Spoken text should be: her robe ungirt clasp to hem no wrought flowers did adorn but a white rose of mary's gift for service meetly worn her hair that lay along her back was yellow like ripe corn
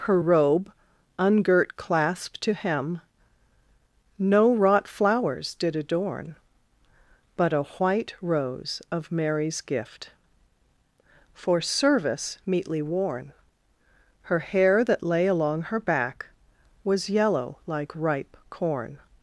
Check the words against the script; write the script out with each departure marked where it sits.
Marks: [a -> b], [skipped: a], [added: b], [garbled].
her robe ungirt clasp to hem no wrought flowers did adorn but a white rose of mary's gift for service meetly worn her hair that lay along her back was yellow like ripe corn